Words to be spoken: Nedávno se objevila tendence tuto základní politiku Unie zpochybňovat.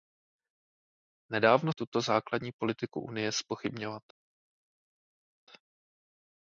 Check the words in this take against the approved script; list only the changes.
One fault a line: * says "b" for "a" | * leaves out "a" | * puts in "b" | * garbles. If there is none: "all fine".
* leaves out "se objevila tendence"